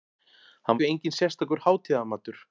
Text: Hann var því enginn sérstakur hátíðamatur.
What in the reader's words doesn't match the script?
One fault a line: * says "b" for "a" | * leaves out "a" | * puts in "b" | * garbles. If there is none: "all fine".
* leaves out "var"